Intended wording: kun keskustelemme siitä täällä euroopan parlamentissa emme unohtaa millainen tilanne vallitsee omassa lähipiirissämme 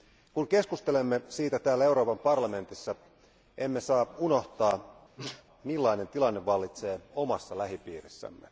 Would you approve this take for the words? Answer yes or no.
no